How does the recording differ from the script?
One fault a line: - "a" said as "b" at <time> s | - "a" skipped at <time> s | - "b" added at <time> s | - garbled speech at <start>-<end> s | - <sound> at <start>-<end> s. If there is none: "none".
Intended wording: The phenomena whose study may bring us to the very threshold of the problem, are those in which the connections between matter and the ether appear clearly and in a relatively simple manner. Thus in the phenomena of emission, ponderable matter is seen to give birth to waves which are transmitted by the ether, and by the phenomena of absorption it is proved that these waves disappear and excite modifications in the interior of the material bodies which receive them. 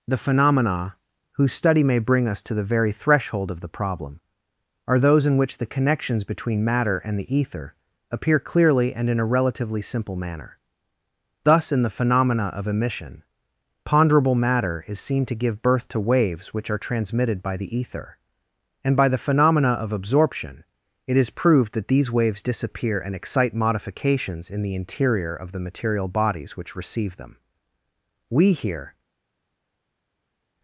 - "We here" added at 28.3 s